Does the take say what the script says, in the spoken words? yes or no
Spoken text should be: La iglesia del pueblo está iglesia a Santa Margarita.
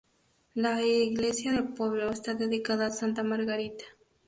no